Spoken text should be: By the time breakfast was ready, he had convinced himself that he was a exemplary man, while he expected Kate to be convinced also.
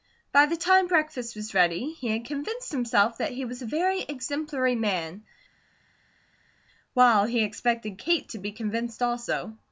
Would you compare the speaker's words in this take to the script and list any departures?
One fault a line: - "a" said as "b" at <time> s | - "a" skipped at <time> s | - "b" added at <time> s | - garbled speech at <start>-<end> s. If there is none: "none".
- "very" added at 3.7 s